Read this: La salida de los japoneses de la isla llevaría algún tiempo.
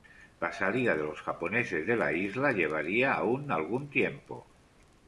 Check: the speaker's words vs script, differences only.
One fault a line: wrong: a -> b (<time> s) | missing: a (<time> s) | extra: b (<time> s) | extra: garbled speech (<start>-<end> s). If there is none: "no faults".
extra: aún (3.1 s)